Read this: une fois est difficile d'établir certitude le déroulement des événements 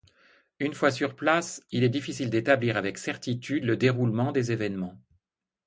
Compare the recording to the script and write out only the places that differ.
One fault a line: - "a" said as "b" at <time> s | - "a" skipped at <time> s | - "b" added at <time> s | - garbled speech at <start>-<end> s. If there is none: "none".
- "sur place il" added at 0.9 s
- "avec" added at 2.8 s